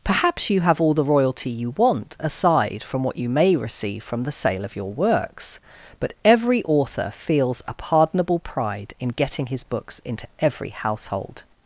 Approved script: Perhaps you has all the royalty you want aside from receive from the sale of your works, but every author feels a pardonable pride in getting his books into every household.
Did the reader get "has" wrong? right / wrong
wrong